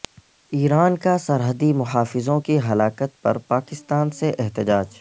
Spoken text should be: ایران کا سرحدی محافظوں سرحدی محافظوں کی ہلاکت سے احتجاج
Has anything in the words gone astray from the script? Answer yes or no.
yes